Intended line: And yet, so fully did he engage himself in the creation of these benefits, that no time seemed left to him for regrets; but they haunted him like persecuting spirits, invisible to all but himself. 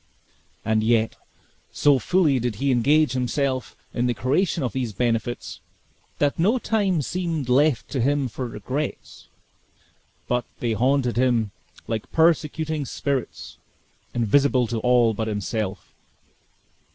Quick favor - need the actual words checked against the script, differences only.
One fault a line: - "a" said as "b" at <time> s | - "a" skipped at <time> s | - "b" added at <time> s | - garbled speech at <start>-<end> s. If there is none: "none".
none